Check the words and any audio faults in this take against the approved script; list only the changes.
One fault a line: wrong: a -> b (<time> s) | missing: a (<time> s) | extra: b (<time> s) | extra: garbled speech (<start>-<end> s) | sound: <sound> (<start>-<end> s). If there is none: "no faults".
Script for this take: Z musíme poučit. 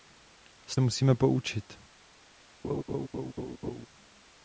sound: laugh (2.6-3.9 s)